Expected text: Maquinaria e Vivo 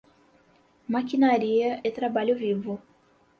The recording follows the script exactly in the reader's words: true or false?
false